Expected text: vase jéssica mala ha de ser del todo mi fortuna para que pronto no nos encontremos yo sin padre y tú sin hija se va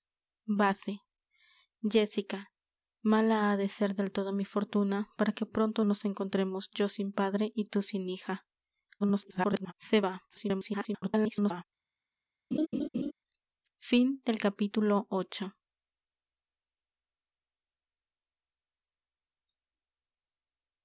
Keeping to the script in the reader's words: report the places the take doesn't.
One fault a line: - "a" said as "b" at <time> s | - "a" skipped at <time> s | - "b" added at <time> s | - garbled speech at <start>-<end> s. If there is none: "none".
- "no" skipped at 5.8 s
- garbled speech at 9.0-9.7 s
- garbled speech at 10.3-11.6 s